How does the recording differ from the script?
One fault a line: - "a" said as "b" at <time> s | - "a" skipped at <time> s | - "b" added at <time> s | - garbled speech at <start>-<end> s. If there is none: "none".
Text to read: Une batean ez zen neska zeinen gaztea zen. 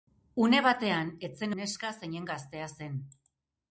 none